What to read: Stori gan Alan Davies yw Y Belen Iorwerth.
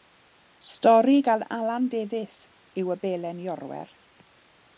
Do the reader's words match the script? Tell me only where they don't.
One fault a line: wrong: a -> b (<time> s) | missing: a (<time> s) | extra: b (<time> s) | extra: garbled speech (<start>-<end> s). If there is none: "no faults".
no faults